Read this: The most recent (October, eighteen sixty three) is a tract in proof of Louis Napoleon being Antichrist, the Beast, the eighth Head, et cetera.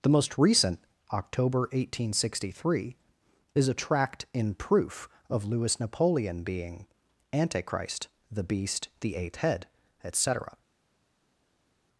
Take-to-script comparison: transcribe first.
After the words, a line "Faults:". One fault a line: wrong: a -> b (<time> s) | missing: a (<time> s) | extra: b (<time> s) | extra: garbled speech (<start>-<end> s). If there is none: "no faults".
The most recent (October, eighteen sixty three) is a tract in proof of Louis Napoleon being Antichrist, the Beast, the eighth Head, et cetera.
Faults:
no faults